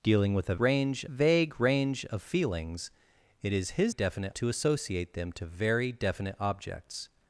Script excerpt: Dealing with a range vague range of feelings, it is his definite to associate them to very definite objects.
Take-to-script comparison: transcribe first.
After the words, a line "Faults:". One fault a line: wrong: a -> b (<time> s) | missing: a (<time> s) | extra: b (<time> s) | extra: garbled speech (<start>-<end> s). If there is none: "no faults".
Dealing with a range vague range of feelings, it is his definite to associate them to very definite objects.
Faults:
no faults